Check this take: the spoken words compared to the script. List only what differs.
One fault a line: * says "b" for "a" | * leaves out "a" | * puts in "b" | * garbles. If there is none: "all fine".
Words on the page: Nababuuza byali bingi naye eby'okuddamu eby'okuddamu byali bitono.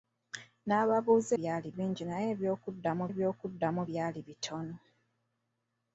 all fine